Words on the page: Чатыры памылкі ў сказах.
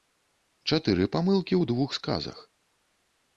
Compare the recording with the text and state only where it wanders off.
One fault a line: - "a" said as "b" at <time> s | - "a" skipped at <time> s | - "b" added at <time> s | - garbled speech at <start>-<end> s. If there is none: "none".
- "двух" added at 1.7 s